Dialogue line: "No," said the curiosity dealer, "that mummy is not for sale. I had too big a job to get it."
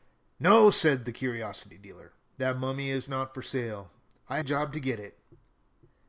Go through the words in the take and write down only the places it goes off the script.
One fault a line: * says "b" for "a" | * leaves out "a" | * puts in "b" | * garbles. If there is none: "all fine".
* leaves out "had too big"